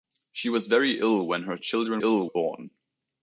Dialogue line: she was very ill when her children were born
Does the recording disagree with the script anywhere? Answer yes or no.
yes